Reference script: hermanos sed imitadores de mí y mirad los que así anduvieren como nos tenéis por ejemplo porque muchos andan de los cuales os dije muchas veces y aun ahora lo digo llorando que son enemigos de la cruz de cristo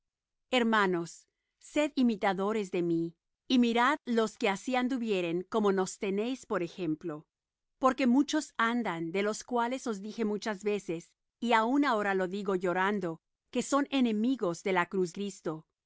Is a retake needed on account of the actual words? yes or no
yes